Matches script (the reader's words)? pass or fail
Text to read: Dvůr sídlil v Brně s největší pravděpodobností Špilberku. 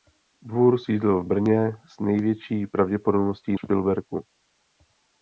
pass